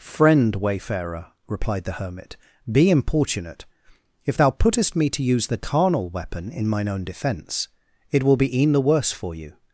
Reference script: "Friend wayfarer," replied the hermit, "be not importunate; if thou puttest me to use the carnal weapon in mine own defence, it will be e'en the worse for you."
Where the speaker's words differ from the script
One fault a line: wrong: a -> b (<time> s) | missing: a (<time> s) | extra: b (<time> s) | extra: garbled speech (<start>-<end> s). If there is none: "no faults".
missing: not (2.9 s)